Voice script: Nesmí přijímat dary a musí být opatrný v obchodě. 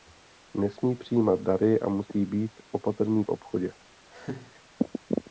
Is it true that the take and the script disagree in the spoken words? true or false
false